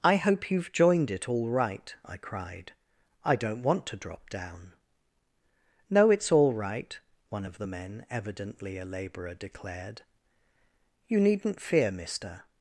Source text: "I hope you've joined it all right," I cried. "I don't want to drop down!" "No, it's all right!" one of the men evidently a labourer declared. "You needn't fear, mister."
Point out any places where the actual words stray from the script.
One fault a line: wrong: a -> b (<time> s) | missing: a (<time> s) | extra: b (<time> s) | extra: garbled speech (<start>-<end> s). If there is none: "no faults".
no faults